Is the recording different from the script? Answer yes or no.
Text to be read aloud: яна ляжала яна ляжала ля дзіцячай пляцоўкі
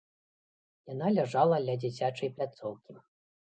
yes